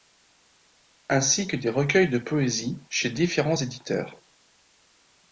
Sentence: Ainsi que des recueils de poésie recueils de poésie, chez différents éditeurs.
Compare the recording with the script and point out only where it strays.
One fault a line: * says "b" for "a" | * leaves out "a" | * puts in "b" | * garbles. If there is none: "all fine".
* leaves out "recueils de poésie"